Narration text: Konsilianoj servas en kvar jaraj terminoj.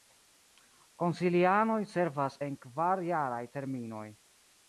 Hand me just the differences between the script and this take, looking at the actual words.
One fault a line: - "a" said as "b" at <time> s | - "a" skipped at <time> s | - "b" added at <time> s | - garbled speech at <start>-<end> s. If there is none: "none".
none